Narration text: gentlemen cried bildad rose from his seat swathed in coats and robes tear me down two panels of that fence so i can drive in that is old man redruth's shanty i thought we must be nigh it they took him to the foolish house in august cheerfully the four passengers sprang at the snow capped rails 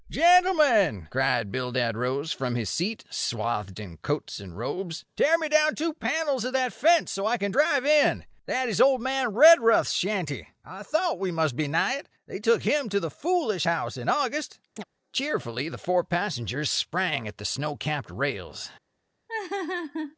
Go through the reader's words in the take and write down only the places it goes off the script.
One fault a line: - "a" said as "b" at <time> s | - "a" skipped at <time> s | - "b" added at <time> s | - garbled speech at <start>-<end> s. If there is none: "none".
none